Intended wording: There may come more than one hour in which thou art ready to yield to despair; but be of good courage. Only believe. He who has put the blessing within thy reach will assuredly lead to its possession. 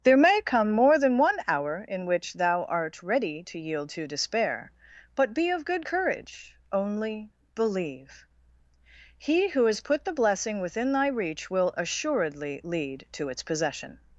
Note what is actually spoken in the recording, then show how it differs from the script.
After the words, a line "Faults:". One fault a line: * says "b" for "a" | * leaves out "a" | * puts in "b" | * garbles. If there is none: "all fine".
There may come more than one hour in which thou art ready to yield to despair; but be of good courage. Only believe. He who has put the blessing within thy reach will assuredly lead to its possession.
Faults:
all fine